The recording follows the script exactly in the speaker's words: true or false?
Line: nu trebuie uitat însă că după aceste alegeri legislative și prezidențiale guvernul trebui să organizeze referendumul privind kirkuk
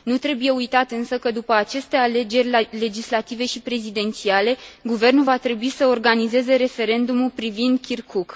false